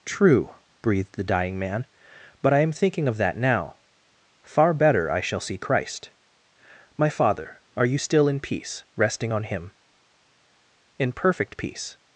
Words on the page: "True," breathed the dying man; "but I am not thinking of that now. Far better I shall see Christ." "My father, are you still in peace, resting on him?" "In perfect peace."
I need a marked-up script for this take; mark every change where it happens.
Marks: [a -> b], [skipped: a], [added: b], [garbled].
"True," breathed the dying man; "but I am [skipped: not] thinking of that now. Far better I shall see Christ." "My father, are you still in peace, resting on him?" "In perfect peace."